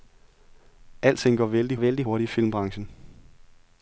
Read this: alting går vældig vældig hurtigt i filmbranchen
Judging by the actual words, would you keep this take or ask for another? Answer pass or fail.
pass